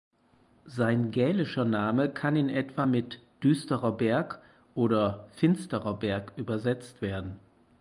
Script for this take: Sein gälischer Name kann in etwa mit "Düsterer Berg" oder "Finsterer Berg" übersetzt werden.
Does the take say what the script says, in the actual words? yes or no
yes